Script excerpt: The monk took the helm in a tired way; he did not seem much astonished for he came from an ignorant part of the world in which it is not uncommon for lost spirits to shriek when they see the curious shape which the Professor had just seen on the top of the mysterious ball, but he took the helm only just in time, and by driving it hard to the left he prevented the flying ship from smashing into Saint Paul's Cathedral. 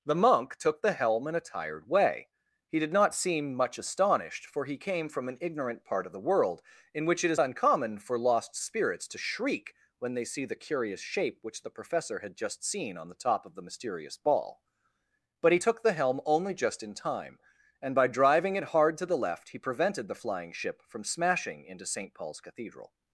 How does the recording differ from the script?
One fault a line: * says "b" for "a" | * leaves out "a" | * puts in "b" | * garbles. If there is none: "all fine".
* leaves out "not"